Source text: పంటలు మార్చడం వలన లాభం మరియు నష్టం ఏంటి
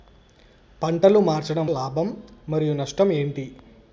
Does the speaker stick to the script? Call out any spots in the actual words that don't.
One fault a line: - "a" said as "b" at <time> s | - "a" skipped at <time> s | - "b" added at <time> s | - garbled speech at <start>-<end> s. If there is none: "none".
- "వలన" skipped at 1.7 s